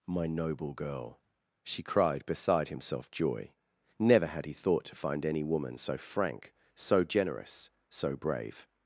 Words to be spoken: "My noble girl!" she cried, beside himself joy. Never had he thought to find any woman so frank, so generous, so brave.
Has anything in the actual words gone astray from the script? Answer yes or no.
no